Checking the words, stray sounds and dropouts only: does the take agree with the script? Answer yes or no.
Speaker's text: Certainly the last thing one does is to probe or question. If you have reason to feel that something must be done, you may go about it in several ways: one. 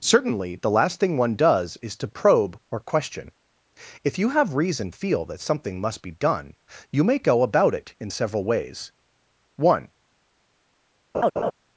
no